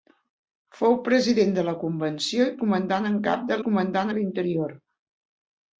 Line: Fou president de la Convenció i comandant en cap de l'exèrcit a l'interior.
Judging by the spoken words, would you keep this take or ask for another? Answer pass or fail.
fail